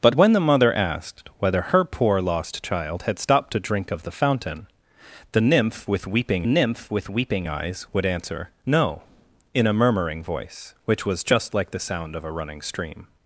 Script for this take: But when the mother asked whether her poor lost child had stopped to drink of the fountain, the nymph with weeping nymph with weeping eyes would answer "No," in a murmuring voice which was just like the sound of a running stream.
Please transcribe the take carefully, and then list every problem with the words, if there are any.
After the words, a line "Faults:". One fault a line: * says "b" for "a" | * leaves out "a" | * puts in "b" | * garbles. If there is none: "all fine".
But when the mother asked whether her poor lost child had stopped to drink of the fountain, the nymph with weeping nymph with weeping eyes would answer "No," in a murmuring voice which was just like the sound of a running stream.
Faults:
all fine